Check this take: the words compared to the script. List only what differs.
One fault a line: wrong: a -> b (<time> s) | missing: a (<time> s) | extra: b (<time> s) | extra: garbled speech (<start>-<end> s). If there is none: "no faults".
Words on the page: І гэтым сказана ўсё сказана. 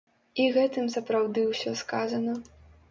wrong: сказана -> сапраўды (1.0 s)